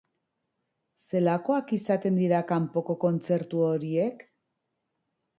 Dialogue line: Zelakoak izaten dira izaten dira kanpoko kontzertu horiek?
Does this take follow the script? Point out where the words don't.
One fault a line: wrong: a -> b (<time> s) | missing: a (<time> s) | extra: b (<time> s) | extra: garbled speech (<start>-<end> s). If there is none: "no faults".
missing: izaten dira (2.4 s)